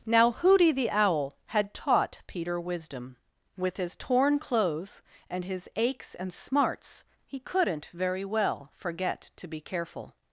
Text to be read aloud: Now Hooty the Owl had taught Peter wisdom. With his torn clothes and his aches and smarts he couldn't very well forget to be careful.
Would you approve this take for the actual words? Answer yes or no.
yes